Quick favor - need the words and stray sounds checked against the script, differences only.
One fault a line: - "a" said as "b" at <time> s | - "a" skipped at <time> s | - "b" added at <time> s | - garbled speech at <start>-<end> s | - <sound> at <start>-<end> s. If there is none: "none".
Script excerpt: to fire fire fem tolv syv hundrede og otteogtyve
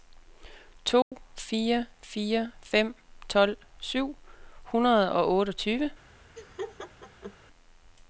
- dropout at 1.0-1.1 s
- laugh at 6.4-7.4 s